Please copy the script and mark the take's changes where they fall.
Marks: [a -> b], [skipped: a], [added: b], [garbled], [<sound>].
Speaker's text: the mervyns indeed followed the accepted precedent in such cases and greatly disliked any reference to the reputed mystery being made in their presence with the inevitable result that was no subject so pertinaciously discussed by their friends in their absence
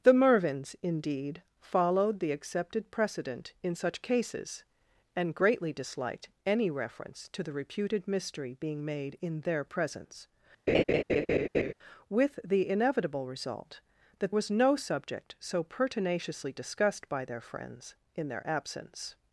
the mervyns indeed followed the accepted precedent in such cases and greatly disliked any reference to the reputed mystery being made in their presence [laugh] with the inevitable result that was no subject so pertinaciously discussed by their friends in their absence